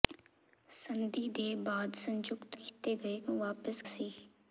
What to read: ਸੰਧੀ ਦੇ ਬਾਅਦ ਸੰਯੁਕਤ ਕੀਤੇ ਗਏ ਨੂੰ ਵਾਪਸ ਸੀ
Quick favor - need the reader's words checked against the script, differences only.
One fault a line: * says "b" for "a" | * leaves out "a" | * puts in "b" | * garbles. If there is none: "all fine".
all fine